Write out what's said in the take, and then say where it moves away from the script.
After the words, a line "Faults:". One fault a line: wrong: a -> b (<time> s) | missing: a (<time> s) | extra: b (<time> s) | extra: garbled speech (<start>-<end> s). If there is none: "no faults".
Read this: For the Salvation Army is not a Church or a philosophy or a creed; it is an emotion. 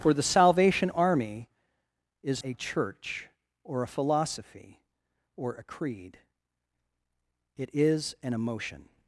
For the Salvation Army is a Church or a philosophy or a creed; it is an emotion.
Faults:
missing: not (2.4 s)